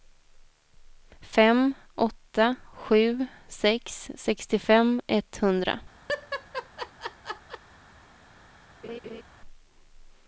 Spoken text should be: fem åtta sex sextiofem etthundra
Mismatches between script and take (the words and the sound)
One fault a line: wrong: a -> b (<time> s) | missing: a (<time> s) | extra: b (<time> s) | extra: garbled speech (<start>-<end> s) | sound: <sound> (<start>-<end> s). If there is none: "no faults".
extra: sju (2.7 s)
sound: laugh (6.1-7.6 s)
sound: laugh (8.8-9.2 s)